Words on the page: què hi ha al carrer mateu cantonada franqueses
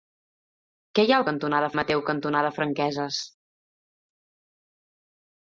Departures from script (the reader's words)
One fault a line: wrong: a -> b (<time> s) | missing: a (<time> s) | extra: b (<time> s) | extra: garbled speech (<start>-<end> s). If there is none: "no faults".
wrong: carrer -> cantonada (1.3 s)